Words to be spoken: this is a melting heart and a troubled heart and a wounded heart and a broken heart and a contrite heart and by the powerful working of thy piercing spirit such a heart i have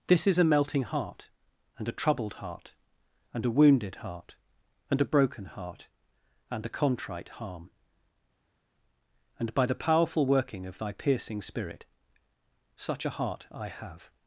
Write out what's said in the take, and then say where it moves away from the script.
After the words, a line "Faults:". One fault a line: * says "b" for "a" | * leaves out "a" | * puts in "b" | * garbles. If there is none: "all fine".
this is a melting heart and a troubled heart and a wounded heart and a broken heart and a contrite harm and by the powerful working of thy piercing spirit such a heart i have
Faults:
* says "harm" for "heart"